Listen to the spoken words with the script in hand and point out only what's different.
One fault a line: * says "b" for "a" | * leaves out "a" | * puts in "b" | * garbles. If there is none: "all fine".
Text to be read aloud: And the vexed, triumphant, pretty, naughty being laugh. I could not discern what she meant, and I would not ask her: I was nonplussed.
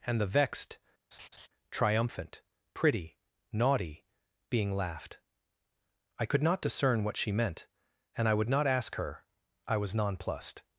* says "laughed" for "laugh"